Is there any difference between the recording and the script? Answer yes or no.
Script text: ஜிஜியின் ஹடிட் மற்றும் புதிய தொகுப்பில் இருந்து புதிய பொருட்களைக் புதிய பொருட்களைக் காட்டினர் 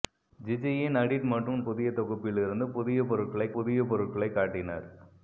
no